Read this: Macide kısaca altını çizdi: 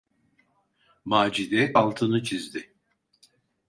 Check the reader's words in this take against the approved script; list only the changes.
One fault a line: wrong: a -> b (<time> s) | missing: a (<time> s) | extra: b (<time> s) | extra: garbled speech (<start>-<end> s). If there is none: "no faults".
missing: kısaca (1.8 s)